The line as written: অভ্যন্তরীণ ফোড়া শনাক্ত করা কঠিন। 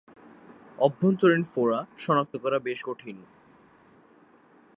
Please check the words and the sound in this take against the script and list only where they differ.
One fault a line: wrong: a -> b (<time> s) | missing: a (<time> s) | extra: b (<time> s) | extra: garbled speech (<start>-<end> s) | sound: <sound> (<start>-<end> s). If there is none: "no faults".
extra: বেশ (2.6 s)